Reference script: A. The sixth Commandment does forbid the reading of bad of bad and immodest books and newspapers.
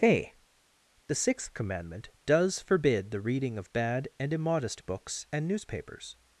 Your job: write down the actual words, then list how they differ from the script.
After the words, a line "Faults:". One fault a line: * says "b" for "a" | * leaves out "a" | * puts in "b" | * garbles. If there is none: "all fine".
A. The sixth Commandment does forbid the reading of bad and immodest books and newspapers.
Faults:
* leaves out "of bad"